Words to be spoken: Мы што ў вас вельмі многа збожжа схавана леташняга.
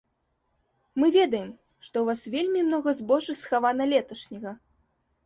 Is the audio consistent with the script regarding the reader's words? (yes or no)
no